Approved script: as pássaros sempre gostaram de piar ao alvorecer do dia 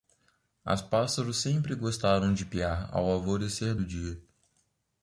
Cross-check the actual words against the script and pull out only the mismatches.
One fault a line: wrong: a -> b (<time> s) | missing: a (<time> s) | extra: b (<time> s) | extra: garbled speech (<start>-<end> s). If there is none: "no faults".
no faults